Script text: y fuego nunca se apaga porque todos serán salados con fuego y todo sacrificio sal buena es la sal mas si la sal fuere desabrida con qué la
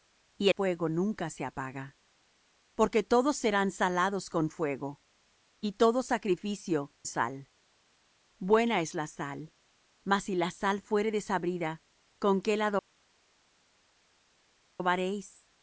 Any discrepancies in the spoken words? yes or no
no